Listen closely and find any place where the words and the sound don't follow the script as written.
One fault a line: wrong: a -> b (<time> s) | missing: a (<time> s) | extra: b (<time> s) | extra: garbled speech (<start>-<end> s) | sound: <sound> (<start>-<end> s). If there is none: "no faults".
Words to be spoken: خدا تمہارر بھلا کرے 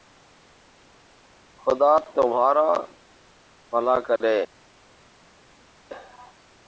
no faults